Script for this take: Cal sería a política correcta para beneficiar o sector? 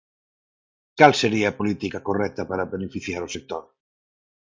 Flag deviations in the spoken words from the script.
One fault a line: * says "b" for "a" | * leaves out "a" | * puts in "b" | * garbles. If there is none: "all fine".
all fine